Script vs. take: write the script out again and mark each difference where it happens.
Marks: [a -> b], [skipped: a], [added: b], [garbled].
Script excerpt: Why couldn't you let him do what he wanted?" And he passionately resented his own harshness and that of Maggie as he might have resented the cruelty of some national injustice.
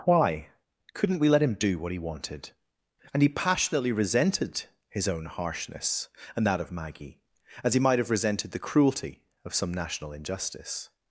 Why couldn't [you -> we] let him do what he wanted?" And he passionately resented his own harshness and that of Maggie as he might have resented the cruelty of some national injustice.